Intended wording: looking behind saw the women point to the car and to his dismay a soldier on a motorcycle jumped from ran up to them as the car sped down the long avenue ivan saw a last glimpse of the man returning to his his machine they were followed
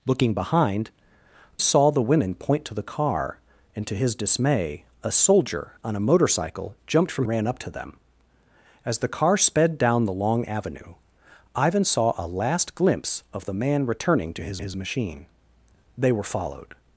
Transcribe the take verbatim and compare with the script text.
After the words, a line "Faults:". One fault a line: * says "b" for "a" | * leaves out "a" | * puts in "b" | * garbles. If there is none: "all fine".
looking behind saw the women point to the car and to his dismay a soldier on a motorcycle jumped from ran up to them as the car sped down the long avenue ivan saw a last glimpse of the man returning to his his machine they were followed
Faults:
all fine